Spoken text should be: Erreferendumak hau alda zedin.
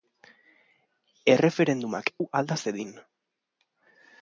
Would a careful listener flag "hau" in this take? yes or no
no